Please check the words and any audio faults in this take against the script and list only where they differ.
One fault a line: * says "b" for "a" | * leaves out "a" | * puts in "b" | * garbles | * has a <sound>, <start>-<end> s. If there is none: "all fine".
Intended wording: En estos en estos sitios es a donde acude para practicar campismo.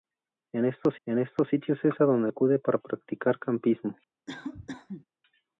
* has a cough, 4.3-5.1 s